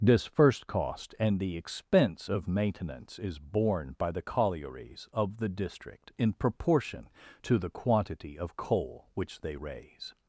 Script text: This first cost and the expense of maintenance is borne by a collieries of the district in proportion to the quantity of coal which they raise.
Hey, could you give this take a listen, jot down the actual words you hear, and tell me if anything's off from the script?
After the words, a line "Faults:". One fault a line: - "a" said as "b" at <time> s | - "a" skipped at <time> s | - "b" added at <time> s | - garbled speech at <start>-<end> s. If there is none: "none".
This first cost and the expense of maintenance is borne by the collieries of the district in proportion to the quantity of coal which they raise.
Faults:
- "a" said as "the" at 4.1 s